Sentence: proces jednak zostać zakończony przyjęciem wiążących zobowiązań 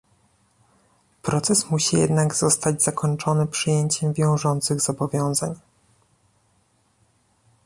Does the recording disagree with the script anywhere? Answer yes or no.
yes